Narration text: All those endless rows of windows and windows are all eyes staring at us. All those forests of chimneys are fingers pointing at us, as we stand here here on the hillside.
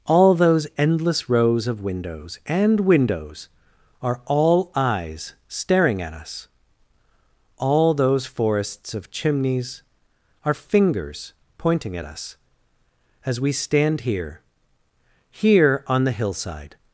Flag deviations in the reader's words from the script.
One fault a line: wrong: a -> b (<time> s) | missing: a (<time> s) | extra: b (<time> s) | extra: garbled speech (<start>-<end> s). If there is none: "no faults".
no faults